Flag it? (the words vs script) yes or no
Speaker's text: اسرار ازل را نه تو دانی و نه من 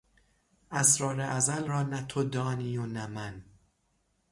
no